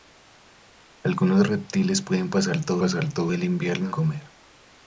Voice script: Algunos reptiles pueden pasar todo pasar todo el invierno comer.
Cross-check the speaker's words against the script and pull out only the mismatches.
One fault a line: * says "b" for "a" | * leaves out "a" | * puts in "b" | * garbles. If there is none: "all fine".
all fine